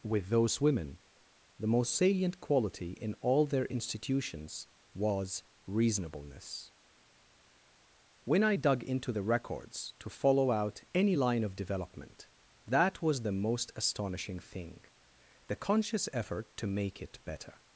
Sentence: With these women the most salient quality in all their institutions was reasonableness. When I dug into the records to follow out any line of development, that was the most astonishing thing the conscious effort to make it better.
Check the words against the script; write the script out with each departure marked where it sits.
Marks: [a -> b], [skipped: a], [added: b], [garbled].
With [these -> those] women the most salient quality in all their institutions was reasonableness. When I dug into the records to follow out any line of development, that was the most astonishing thing the conscious effort to make it better.